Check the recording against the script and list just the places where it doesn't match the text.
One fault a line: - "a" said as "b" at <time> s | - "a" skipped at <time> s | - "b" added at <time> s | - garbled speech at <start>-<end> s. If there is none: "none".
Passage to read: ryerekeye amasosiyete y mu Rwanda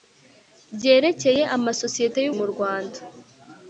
none